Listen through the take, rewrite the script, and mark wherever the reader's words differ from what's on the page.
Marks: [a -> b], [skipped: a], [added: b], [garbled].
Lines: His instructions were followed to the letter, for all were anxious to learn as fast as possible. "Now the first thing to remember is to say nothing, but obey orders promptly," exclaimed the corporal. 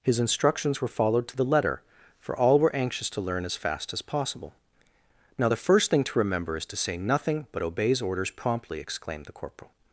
His instructions were followed to the letter, for all were anxious to learn as fast as possible. "Now the first thing to remember is to say nothing, but [obey -> obeys] orders promptly," exclaimed the corporal.